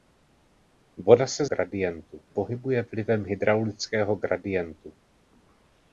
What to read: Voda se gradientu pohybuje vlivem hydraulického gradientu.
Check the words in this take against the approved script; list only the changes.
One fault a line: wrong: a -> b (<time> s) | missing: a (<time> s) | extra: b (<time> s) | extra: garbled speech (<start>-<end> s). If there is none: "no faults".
no faults